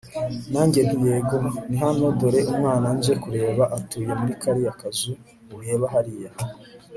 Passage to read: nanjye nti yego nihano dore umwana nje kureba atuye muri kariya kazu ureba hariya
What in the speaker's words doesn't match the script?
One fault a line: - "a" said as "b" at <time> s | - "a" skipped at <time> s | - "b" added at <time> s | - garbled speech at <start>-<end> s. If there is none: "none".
none